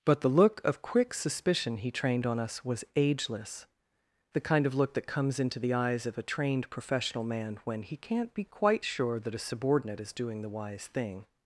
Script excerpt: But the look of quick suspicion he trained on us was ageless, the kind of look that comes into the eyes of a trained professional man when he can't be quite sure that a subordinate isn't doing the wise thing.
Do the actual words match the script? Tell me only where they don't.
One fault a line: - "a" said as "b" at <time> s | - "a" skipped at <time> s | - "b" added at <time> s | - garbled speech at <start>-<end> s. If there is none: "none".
- "isn't" said as "is" at 10.0 s